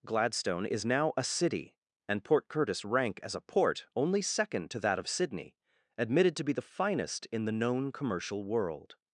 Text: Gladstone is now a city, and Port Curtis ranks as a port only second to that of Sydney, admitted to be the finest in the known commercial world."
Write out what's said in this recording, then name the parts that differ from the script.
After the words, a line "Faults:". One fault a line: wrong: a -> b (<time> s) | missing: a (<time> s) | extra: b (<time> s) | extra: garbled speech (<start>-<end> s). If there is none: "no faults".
Gladstone is now a city, and Port Curtis rank as a port only second to that of Sydney, admitted to be the finest in the known commercial world."
Faults:
wrong: ranks -> rank (2.8 s)